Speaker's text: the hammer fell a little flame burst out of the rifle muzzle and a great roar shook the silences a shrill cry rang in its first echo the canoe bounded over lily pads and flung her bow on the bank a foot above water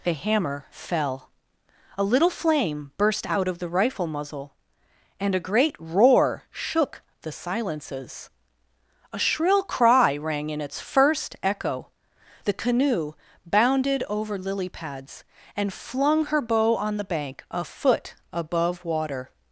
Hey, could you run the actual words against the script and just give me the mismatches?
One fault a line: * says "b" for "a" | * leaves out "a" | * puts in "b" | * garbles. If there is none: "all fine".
all fine